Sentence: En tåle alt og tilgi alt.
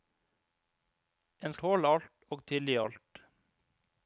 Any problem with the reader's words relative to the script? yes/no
no